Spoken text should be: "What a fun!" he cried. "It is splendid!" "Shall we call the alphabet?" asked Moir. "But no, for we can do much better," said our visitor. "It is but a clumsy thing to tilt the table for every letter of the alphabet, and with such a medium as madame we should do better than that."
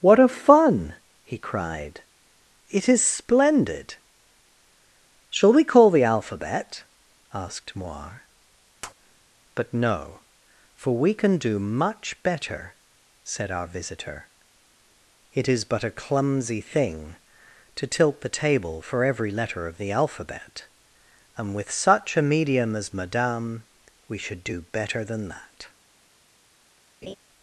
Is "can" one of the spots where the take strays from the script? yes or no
no